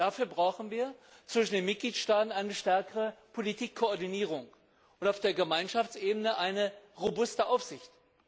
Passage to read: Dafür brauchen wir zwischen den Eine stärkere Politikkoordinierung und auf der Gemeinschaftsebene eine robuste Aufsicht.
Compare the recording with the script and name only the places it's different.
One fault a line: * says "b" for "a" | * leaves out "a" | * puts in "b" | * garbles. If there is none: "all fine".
* puts in "Mitgliedstaaten"